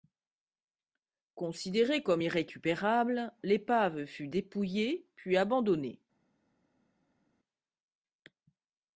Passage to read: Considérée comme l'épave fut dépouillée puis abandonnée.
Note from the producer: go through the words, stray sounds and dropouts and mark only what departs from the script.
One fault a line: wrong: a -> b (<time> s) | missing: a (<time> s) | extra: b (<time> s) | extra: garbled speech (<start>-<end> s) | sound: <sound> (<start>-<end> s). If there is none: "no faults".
extra: irrécupérable (2.2 s)